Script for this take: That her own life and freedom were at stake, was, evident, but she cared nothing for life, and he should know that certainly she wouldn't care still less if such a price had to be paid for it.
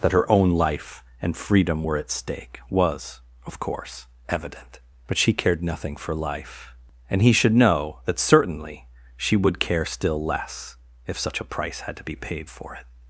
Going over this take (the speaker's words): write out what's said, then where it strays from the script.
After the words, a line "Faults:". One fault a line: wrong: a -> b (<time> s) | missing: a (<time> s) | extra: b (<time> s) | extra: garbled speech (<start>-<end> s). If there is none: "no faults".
That her own life and freedom were at stake, was, of course, evident, but she cared nothing for life, and he should know that certainly she would care still less if such a price had to be paid for it.
Faults:
extra: of course (3.5 s)
wrong: wouldn't -> would (9.4 s)